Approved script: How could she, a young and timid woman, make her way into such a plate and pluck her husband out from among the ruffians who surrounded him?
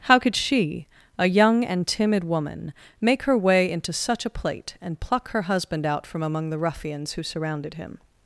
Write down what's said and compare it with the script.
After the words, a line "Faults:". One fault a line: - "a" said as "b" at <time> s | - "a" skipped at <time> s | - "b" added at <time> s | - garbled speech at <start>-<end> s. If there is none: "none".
How could she, a young and timid woman, make her way into such a plate and pluck her husband out from among the ruffians who surrounded him?
Faults:
none